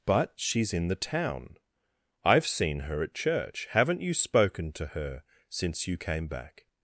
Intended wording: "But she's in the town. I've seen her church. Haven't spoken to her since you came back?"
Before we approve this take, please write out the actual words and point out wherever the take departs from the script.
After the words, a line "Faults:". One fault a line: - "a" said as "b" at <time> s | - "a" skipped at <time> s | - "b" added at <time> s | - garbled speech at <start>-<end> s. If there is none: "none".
"But she's in the town. I've seen her at church. Haven't you spoken to her since you came back?"
Faults:
- "at" added at 3.0 s
- "you" added at 4.0 s